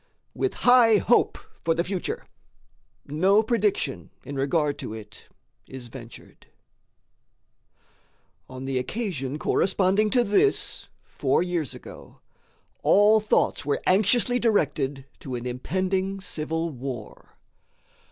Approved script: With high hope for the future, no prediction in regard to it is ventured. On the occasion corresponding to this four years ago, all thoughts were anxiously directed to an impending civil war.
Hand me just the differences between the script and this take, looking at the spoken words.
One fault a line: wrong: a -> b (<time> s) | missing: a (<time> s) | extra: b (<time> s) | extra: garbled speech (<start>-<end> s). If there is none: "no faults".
no faults